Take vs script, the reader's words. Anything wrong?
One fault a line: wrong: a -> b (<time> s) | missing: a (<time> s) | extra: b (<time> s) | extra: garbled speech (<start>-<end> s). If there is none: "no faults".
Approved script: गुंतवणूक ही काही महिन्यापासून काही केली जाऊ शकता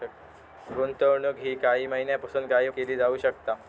no faults